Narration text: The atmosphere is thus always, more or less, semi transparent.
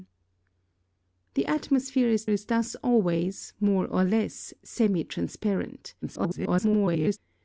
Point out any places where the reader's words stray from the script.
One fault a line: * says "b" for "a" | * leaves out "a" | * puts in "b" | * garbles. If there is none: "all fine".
* puts in "is"
* garbles